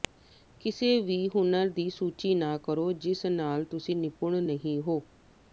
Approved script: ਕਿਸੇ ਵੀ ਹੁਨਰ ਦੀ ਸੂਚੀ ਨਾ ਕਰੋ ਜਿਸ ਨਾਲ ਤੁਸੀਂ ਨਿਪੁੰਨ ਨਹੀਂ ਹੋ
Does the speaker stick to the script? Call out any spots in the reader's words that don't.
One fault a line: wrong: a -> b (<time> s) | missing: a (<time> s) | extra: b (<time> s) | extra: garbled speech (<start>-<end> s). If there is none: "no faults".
no faults